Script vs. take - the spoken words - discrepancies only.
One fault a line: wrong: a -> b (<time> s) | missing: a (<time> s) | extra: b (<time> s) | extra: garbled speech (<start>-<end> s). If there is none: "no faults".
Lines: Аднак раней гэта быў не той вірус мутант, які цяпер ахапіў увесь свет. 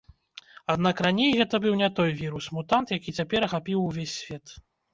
no faults